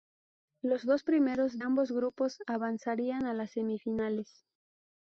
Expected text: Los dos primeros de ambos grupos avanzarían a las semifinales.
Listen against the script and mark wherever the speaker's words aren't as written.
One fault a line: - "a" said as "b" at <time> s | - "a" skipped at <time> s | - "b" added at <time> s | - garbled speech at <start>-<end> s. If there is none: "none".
- "de" skipped at 1.6 s